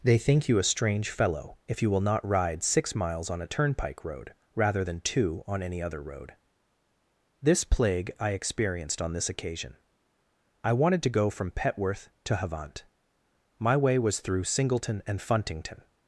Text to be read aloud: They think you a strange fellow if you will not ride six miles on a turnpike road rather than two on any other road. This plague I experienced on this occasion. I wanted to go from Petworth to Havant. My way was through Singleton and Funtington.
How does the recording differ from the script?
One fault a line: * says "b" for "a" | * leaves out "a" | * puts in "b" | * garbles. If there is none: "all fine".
all fine